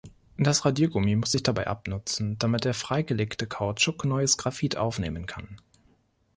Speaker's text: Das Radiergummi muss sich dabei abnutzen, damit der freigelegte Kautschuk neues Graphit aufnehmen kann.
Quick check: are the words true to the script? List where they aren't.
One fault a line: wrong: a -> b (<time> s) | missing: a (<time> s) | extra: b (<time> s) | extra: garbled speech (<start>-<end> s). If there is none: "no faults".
no faults